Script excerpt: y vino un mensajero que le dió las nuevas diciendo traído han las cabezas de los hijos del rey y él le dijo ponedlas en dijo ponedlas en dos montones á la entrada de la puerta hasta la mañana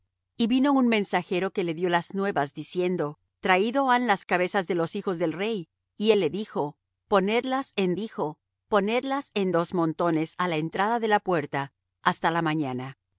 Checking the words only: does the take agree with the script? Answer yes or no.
yes